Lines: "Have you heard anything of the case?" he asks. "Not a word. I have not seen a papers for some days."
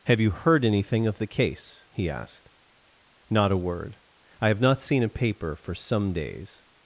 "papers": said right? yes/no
no